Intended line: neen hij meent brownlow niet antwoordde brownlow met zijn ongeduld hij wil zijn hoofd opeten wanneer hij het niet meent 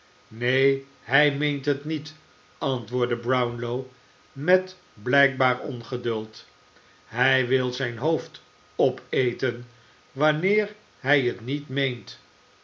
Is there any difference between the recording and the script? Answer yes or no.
yes